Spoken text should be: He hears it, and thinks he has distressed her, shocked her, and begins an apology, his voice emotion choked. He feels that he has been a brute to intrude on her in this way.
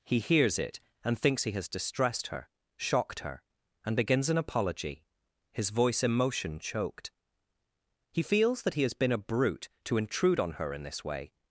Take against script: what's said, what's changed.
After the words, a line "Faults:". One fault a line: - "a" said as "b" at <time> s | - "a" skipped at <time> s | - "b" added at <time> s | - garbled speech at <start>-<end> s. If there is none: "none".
He hears it, and thinks he has distressed her, shocked her, and begins an apology, his voice emotion choked. He feels that he has been a brute to intrude on her in this way.
Faults:
none